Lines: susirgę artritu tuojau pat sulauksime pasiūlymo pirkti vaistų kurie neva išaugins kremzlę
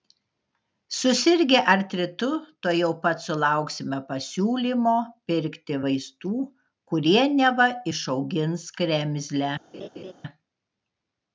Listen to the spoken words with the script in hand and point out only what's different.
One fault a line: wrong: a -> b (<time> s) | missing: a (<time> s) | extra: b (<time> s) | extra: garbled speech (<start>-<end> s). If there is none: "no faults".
no faults